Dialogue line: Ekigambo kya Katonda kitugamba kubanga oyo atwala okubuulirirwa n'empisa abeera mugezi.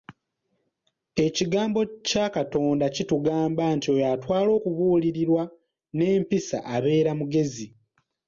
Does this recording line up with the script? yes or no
no